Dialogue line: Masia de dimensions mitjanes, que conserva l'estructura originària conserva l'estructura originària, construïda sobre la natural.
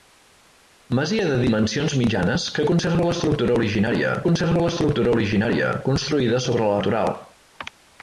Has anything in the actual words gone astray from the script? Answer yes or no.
no